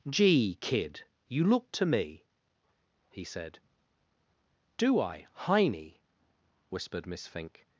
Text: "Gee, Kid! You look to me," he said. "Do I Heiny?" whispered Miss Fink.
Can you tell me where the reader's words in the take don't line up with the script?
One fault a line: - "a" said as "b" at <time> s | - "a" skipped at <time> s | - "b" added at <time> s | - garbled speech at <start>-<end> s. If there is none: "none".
none